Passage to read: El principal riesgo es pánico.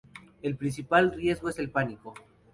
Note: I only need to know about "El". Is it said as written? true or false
true